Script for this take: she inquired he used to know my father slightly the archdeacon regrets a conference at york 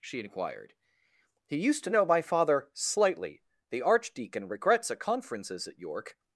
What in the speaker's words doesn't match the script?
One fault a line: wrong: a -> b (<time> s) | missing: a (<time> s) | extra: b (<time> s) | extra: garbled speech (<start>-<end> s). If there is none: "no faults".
wrong: conference -> conferences (5.0 s)